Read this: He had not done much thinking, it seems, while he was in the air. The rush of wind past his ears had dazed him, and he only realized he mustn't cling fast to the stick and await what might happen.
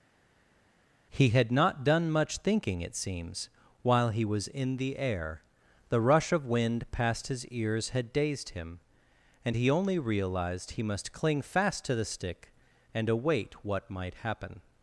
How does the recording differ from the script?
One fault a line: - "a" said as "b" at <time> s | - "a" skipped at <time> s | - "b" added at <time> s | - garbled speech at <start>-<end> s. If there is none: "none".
- "mustn't" said as "must" at 10.8 s